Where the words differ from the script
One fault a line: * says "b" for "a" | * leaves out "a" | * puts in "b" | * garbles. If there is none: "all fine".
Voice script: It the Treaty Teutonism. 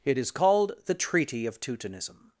* puts in "is called"
* puts in "of"